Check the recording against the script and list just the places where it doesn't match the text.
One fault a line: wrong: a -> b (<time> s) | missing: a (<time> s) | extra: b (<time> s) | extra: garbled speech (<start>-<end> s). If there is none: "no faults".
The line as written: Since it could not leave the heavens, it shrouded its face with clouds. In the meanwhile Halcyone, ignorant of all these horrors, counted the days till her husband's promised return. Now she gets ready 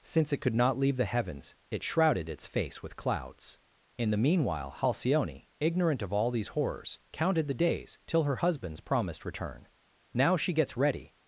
no faults